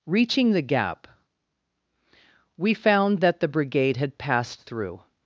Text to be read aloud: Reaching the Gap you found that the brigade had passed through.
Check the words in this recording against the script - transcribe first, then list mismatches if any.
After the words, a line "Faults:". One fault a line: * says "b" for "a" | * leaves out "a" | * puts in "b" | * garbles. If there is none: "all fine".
Reaching the Gap we found that the brigade had passed through.
Faults:
* says "we" for "you"